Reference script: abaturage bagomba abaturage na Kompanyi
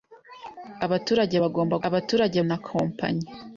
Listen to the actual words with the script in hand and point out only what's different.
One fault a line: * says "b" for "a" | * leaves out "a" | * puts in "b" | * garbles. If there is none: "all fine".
all fine